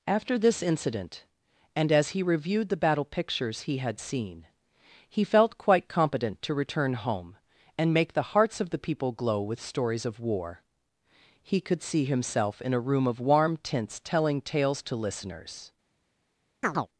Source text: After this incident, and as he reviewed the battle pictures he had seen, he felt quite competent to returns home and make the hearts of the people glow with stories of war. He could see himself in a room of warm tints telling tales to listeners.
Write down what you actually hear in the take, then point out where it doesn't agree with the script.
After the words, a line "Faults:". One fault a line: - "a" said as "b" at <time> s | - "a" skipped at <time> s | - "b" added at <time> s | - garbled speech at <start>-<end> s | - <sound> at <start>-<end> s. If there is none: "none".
After this incident, and as he reviewed the battle pictures he had seen, he felt quite competent to return home and make the hearts of the people glow with stories of war. He could see himself in a room of warm tints telling tales to listeners.
Faults:
- "returns" said as "return" at 6.5 s
- chirp at 16.6-16.9 s